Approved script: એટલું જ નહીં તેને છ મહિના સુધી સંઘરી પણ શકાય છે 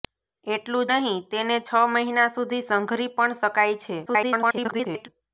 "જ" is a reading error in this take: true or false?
true